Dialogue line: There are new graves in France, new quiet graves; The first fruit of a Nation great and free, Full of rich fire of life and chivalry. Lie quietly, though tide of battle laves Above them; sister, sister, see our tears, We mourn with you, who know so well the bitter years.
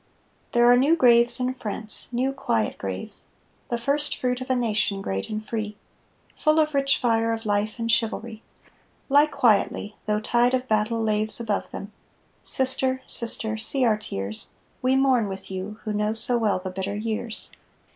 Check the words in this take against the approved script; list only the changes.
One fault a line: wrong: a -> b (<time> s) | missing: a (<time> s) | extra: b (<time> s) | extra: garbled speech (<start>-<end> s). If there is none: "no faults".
no faults